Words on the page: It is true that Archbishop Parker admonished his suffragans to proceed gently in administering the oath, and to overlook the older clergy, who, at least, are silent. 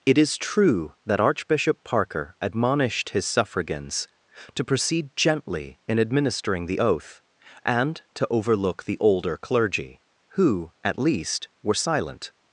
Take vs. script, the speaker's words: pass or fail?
fail